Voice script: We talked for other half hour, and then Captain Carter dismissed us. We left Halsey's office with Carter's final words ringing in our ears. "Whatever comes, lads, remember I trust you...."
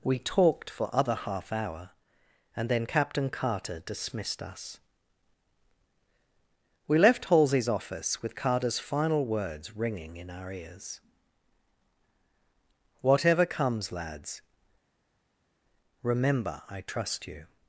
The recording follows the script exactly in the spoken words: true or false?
true